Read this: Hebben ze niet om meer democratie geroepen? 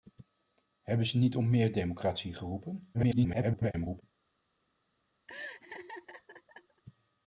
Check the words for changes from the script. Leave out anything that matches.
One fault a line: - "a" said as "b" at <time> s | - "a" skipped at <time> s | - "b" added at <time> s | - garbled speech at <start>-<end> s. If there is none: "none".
- garbled speech at 2.9-4.0 s